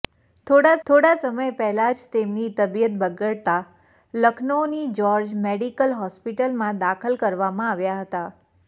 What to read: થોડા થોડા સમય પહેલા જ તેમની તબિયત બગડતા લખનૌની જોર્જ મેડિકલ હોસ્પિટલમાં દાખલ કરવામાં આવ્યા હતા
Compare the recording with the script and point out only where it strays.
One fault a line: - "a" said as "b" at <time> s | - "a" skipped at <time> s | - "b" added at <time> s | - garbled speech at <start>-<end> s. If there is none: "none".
none